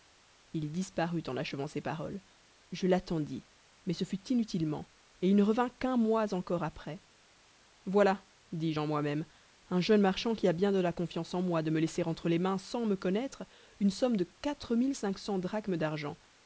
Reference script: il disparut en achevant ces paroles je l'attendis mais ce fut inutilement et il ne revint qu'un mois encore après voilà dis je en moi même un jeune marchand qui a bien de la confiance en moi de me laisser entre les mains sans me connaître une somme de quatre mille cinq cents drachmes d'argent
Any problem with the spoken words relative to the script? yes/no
no